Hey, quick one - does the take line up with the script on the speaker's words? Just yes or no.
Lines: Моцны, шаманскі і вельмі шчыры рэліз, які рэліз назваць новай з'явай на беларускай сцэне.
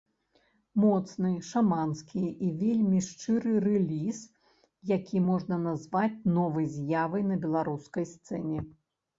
no